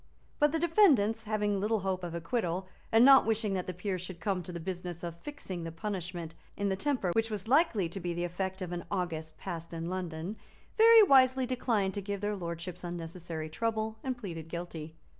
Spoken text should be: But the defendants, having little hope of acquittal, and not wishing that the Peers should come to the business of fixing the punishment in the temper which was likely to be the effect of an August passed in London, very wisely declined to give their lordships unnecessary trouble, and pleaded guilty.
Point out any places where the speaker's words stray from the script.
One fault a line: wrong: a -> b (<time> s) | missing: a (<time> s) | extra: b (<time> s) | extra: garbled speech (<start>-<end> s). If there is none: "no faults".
no faults